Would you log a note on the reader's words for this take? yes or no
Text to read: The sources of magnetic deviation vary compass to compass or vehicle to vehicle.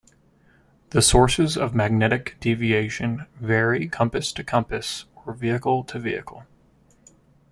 no